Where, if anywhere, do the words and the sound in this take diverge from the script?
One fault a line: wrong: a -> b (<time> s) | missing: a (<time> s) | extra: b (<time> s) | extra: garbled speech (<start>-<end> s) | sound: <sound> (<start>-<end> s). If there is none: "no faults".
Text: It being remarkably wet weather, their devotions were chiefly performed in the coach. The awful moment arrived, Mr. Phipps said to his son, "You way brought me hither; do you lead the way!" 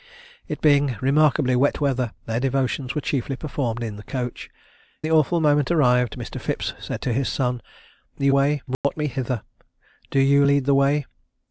sound: dropout (8.7-8.8 s)